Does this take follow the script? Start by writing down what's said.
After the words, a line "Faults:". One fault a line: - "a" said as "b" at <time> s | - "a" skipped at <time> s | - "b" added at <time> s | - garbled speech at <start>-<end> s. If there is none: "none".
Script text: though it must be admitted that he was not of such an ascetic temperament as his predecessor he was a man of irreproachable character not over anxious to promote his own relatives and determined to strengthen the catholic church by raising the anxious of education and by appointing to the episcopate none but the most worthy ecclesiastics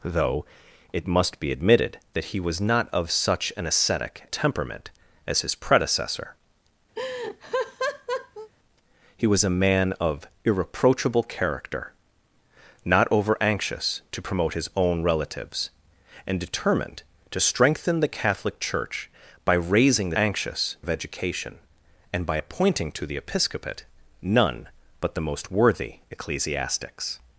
though it must be admitted that he was not of such an ascetic temperament as his predecessor he was a man of irreproachable character not over anxious to promote his own relatives and determined to strengthen the catholic church by raising the anxious of education and by appointing to the episcopate none but the most worthy ecclesiastics
Faults:
none